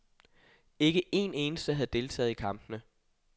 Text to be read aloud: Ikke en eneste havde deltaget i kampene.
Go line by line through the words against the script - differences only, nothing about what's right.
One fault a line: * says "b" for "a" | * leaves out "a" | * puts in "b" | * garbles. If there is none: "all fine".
all fine